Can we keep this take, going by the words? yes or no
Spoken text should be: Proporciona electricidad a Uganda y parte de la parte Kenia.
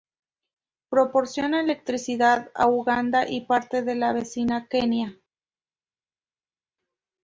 no